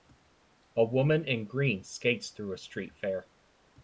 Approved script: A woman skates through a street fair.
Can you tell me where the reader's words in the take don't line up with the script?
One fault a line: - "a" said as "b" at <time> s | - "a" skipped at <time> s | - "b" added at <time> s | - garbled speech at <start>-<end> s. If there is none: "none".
- "in green" added at 1.3 s